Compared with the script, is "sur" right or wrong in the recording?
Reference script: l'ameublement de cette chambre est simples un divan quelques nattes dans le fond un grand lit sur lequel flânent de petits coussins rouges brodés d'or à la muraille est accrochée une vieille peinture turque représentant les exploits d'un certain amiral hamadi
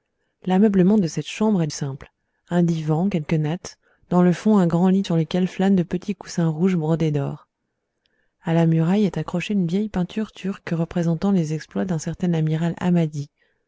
right